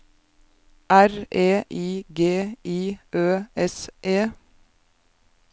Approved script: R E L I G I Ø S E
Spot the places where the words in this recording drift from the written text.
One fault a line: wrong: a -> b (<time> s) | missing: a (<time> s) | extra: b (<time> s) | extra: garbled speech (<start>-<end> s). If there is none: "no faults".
missing: L (1.6 s)